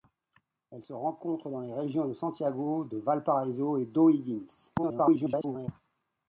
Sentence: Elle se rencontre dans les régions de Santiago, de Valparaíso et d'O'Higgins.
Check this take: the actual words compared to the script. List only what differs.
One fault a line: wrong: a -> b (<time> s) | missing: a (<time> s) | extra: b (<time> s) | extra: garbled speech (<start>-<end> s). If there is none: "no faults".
extra: garbled speech (4.8-5.7 s)